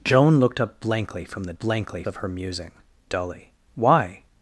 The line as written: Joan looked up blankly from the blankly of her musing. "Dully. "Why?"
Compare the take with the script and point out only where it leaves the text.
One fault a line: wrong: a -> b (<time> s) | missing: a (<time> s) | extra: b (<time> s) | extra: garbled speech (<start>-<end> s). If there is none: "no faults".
no faults